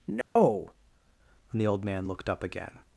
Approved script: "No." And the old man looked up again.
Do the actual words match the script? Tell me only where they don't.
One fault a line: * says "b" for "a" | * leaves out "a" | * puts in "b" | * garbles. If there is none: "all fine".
all fine